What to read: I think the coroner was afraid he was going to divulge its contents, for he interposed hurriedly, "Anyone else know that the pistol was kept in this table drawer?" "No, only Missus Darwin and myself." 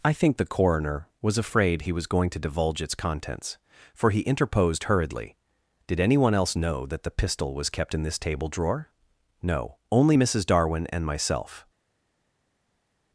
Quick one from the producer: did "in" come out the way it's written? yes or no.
yes